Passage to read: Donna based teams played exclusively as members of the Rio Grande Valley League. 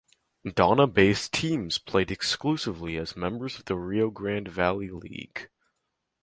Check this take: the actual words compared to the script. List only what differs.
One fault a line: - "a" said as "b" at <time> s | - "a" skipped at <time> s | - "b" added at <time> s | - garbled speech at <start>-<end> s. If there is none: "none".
none